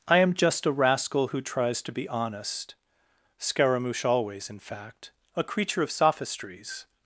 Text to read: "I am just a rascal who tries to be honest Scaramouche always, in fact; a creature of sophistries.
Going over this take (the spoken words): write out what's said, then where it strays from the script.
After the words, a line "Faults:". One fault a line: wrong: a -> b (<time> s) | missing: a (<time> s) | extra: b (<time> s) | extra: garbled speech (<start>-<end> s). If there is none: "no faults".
"I am just a rascal who tries to be honest Scaramouche always, in fact; a creature of sophistries.
Faults:
no faults